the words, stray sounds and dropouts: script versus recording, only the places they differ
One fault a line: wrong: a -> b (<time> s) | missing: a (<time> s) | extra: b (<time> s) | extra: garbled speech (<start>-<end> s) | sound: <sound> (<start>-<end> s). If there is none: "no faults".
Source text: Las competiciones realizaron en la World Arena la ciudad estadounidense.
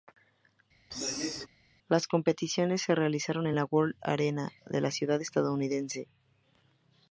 sound: throat clearing (0.9-1.5 s)
extra: se (2.8 s)
extra: de (4.7 s)